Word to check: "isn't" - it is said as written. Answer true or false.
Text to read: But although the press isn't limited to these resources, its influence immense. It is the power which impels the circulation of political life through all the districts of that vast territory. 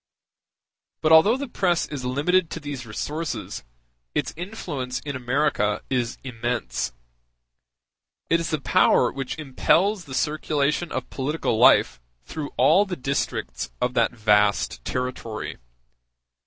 false